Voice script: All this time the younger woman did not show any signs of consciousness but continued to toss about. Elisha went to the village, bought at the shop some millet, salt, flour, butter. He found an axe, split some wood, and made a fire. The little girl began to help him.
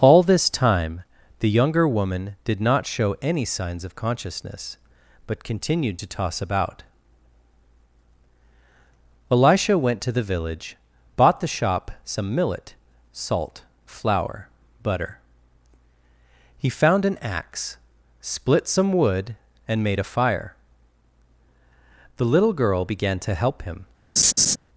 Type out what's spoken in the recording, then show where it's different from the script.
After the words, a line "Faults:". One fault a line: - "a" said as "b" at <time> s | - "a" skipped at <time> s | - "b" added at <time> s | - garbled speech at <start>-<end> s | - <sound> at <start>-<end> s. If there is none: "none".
All this time the younger woman did not show any signs of consciousness but continued to toss about. Elisha went to the village, bought the shop some millet, salt, flour, butter. He found an axe, split some wood, and made a fire. The little girl began to help him.
Faults:
- "at" skipped at 11.4 s
- laugh at 24.2-24.6 s